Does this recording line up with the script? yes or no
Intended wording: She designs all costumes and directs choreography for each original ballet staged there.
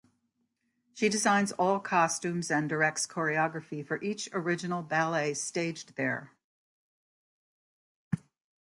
yes